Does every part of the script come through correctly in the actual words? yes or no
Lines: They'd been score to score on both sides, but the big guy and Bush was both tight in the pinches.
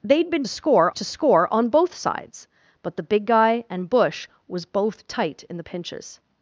yes